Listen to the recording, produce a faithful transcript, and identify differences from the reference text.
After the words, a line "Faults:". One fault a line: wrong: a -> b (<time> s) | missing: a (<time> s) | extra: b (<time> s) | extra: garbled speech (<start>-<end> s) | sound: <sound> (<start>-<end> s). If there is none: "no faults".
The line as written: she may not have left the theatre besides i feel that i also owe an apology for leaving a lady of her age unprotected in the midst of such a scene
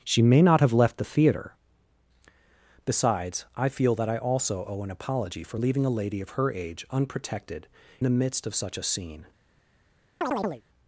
she may not have left the theatre besides i feel that i also owe an apology for leaving a lady of her age unprotected the midst of such a scene
Faults:
missing: in (7.7 s)
sound: chirp (10.2-10.6 s)